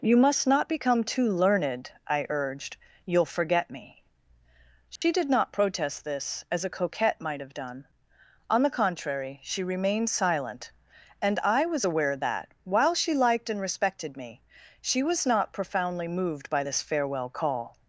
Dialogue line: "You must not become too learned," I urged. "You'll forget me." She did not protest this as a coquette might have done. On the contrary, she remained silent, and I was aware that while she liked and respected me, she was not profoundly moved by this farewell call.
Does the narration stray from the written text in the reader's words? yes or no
no